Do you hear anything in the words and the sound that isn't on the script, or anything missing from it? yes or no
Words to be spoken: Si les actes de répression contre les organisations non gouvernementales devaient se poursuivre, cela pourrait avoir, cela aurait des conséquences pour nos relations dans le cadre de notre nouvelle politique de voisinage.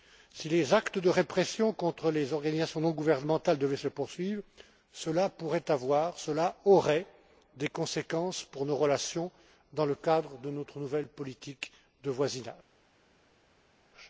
no